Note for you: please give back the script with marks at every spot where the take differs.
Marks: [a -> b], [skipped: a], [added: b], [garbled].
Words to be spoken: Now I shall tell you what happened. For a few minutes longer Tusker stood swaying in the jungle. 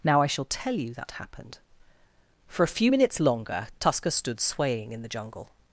Now I shall tell you [what -> that] happened. For a few minutes longer Tusker stood swaying in the jungle.